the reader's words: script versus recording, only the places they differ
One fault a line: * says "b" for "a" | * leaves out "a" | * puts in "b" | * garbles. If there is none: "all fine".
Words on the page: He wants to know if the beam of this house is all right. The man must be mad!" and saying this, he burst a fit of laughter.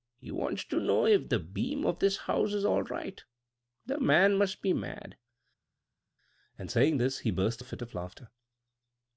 all fine